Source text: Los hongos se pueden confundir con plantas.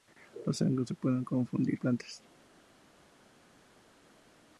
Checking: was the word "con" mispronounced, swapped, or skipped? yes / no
yes